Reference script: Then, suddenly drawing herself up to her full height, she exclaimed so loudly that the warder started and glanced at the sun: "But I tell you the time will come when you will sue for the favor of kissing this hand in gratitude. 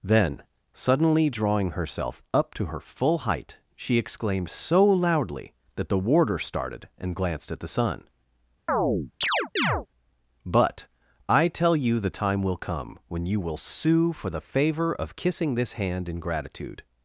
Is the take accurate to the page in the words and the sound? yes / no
no